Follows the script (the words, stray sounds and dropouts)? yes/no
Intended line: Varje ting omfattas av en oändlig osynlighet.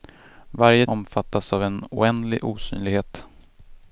no